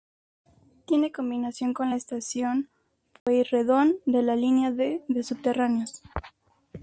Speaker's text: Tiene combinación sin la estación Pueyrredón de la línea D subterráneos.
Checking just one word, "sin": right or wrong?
wrong